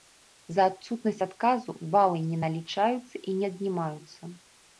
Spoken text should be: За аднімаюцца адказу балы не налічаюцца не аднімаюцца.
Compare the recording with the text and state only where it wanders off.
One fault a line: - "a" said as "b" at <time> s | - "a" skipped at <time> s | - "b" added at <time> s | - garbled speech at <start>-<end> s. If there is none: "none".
- "аднімаюцца" said as "адсутнасць" at 0.7 s
- "і" added at 3.3 s